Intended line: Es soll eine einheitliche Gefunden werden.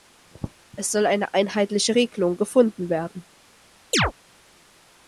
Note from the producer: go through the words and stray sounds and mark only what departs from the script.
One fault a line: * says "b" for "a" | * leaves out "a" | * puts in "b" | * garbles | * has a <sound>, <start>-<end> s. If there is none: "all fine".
* puts in "Regelung"
* has a chirp, 3.9-4.1 s